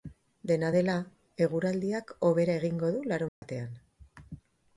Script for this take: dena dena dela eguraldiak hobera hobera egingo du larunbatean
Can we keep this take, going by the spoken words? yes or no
no